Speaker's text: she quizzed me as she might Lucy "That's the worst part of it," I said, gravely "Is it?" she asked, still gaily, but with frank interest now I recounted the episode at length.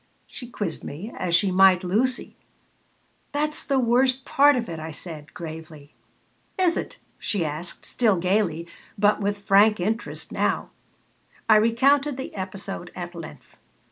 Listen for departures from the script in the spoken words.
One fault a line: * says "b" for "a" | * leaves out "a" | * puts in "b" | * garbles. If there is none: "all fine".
all fine